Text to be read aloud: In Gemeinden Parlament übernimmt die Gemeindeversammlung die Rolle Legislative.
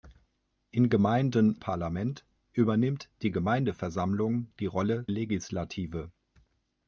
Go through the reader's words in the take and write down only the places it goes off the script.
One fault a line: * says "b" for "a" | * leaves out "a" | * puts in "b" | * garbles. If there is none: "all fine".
all fine